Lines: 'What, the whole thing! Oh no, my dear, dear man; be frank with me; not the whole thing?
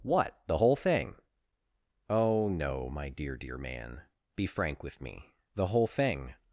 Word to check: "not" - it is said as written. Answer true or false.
false